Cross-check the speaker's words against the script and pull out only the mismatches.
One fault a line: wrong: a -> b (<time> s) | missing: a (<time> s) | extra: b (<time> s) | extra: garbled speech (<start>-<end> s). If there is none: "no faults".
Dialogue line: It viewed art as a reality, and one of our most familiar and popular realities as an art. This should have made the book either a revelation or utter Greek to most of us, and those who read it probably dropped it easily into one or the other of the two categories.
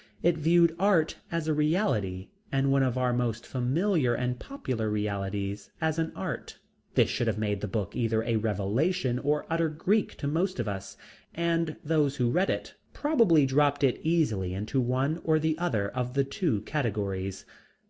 no faults